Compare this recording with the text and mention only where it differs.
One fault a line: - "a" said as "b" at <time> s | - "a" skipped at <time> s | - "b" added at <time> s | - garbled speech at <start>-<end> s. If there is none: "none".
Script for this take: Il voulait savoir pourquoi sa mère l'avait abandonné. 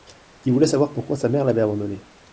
none